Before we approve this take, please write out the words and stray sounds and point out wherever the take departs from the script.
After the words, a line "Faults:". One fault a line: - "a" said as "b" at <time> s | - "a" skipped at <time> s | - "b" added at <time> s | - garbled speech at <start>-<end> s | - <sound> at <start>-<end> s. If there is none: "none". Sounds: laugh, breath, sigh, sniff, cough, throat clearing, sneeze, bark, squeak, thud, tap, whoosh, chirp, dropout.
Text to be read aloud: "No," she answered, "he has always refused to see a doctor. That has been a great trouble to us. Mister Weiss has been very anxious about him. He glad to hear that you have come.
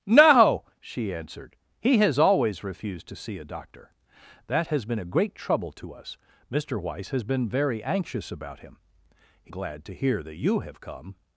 "No," she answered, "he has always refused to see a doctor. That has been a great trouble to us. Mister Weiss has been very anxious about him. He glad to hear that you have come.
Faults:
none